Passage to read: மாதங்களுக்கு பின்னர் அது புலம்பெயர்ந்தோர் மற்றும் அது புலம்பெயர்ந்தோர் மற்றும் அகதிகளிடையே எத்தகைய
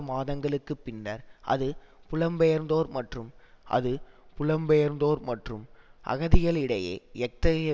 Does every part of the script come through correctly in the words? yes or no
yes